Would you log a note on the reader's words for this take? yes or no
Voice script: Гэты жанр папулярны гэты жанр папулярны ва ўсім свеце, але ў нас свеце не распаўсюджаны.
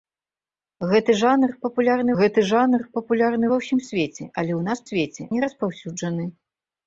no